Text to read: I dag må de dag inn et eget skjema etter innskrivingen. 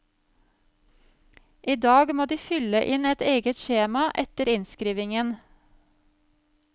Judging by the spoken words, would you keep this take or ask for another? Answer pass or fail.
fail